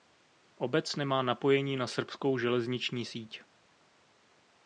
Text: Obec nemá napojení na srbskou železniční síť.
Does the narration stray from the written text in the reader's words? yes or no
no